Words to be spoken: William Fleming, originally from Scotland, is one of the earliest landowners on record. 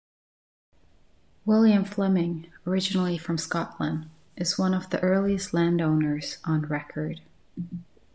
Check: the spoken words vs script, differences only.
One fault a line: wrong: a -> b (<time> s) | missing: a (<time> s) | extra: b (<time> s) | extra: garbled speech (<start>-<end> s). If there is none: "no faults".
no faults